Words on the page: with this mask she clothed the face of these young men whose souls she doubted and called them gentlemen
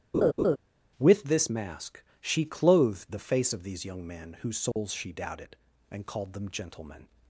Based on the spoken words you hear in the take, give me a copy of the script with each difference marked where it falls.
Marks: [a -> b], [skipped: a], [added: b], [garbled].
with this mask she clothed the face of these young men whose souls she doubted and called them gentlemen